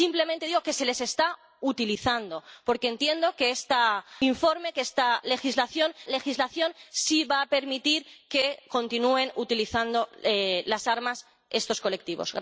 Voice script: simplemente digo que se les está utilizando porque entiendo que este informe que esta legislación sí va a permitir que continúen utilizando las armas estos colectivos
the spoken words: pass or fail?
fail